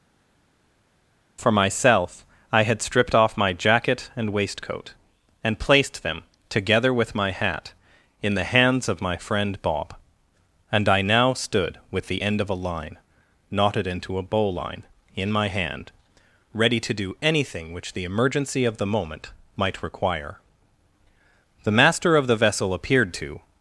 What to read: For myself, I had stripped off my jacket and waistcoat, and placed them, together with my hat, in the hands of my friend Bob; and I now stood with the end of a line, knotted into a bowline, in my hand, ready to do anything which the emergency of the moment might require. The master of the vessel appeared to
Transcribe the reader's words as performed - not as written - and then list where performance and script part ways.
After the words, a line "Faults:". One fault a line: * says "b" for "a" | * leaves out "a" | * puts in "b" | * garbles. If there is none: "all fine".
For myself, I had stripped off my jacket and waistcoat, and placed them, together with my hat, in the hands of my friend Bob; and I now stood with the end of a line, knotted into a bowline, in my hand, ready to do anything which the emergency of the moment might require. The master of the vessel appeared to
Faults:
all fine